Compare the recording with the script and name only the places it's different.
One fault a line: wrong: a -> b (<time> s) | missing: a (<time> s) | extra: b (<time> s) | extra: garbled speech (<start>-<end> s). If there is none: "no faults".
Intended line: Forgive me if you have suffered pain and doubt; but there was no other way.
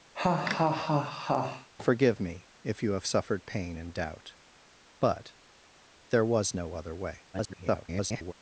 extra: garbled speech (7.3-8.3 s)